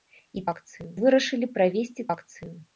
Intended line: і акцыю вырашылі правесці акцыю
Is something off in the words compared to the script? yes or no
no